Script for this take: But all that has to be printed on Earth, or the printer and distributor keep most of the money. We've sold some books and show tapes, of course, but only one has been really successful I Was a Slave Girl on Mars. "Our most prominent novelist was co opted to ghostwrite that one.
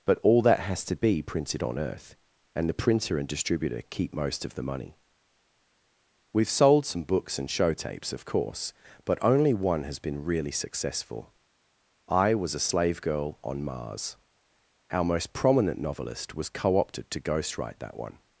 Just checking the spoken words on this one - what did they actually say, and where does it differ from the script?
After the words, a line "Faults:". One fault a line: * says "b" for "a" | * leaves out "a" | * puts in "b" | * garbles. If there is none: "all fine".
But all that has to be printed on Earth, and the printer and distributor keep most of the money. We've sold some books and show tapes, of course, but only one has been really successful I Was a Slave Girl on Mars. "Our most prominent novelist was co opted to ghostwrite that one.
Faults:
* says "and" for "or"